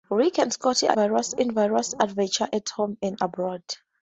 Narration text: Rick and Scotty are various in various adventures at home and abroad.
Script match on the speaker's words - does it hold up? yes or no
yes